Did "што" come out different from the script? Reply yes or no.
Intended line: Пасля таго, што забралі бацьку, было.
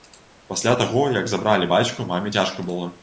yes